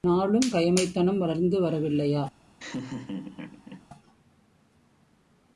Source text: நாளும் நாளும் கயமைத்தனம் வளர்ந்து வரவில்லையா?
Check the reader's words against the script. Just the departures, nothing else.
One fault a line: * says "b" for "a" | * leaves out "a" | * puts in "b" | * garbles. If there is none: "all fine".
* leaves out "நாளும்"